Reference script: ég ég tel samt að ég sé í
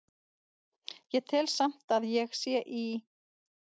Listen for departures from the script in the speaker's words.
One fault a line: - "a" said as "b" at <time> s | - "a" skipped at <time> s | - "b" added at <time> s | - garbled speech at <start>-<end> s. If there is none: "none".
- "ég" skipped at 1.3 s